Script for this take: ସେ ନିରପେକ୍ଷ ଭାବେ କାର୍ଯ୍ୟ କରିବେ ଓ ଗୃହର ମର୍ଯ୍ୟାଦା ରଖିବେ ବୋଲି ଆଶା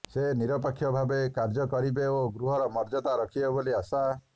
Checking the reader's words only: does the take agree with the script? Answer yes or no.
yes